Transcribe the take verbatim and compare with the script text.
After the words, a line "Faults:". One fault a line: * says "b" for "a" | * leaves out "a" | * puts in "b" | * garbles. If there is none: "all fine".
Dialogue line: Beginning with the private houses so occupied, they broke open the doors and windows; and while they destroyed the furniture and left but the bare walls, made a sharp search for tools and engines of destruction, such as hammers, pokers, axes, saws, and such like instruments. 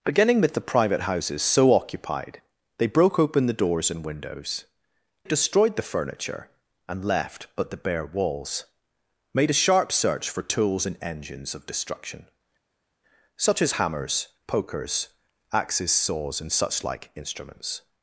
Beginning with the private houses so occupied, they broke open the doors and windows; destroyed the furniture and left but the bare walls, made a sharp search for tools and engines of destruction, such as hammers, pokers, axes, saws, and such like instruments.
Faults:
* leaves out "and while they"